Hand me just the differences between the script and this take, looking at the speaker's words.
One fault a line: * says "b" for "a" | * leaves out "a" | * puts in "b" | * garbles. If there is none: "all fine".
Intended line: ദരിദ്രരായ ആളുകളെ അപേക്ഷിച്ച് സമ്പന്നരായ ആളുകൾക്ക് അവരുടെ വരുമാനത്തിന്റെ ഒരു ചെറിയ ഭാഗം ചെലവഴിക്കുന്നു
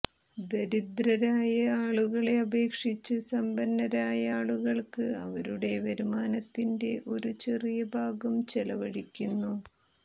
all fine